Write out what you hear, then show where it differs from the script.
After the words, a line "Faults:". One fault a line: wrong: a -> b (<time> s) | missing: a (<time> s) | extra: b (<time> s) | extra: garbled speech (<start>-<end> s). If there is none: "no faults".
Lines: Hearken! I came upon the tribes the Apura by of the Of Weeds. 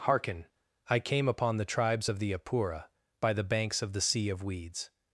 Hearken! I came upon the tribes of the Apura by the banks of the Sea of Weeds.
Faults:
extra: of (2.1 s)
extra: the banks (3.3 s)
extra: Sea (4.0 s)